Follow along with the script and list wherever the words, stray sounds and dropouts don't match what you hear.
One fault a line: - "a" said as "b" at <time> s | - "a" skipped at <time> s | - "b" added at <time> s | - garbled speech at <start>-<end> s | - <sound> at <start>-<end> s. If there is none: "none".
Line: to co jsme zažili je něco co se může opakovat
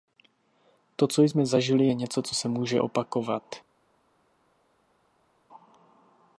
none